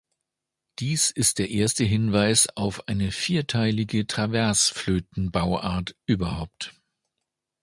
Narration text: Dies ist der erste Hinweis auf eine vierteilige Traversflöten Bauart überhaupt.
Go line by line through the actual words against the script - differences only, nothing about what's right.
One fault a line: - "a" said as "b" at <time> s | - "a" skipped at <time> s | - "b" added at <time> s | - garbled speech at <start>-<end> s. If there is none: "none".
none